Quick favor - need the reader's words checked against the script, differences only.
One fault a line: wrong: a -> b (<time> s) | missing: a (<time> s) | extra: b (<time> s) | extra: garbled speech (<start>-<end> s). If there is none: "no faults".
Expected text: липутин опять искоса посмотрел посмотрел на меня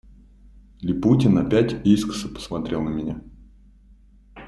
missing: посмотрел (2.8 s)